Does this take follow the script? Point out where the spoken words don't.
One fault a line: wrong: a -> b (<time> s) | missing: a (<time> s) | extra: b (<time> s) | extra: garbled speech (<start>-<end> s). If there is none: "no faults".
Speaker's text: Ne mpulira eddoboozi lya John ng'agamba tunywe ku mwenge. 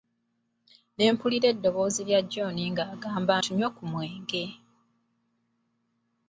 no faults